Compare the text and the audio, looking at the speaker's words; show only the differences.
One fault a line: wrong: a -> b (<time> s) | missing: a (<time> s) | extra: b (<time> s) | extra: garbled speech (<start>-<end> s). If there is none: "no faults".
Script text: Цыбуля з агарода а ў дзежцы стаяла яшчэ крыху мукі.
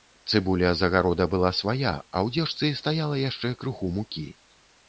extra: была свая (1.3 s)